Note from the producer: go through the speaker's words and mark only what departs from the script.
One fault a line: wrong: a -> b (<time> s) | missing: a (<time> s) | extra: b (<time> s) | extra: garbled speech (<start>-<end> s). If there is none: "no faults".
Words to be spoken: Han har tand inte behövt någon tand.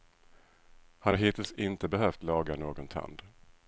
wrong: tand -> hittills (1.1 s)
extra: laga (2.2 s)